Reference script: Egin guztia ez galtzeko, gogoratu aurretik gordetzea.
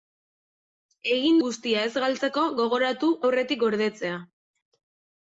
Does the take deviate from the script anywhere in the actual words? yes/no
no